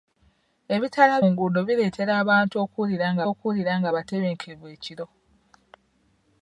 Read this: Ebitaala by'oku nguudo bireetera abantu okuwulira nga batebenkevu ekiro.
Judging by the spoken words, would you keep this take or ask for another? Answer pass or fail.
fail